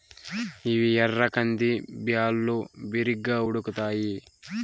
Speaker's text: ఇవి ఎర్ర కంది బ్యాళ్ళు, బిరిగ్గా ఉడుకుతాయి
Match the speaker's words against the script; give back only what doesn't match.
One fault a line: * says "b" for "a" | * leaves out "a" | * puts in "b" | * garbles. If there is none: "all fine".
all fine